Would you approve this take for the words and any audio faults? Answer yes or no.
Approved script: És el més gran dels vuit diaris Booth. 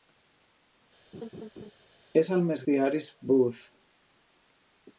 no